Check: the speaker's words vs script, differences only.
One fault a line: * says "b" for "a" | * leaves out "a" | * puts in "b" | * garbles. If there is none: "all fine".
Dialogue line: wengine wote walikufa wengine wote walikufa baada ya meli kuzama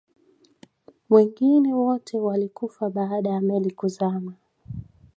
* leaves out "wengine wote walikufa"